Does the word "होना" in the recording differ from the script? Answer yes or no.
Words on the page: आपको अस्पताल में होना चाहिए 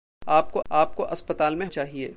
yes